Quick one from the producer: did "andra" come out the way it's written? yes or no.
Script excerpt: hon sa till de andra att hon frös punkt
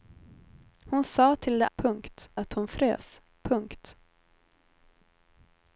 no